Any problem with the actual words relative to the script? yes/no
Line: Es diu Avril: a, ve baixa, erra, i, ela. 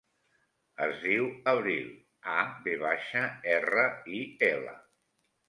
no